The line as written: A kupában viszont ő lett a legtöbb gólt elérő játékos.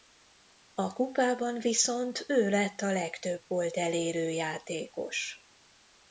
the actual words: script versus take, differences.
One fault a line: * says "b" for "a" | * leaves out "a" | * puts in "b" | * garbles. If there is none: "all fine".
all fine